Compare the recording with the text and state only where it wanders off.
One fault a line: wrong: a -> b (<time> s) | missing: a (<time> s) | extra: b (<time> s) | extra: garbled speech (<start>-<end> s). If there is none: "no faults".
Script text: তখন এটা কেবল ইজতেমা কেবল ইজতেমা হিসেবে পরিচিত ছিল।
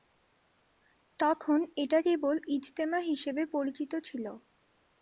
missing: কেবল ইজতেমা (3.0 s)